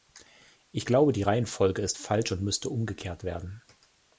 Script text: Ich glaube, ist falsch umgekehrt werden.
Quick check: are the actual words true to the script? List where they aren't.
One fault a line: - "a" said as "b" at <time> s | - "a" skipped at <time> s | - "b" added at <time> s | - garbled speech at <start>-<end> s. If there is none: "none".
- "die Reihenfolge" added at 1.1 s
- "und müsste" added at 2.3 s